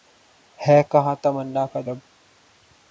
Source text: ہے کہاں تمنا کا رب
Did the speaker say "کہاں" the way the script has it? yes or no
yes